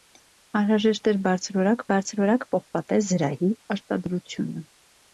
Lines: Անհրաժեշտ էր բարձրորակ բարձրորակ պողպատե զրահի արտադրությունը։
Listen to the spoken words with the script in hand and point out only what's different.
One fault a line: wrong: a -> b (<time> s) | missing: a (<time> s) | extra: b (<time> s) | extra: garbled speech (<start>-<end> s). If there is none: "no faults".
no faults